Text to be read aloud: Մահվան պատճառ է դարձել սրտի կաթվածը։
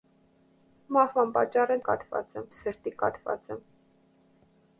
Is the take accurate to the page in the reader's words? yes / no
no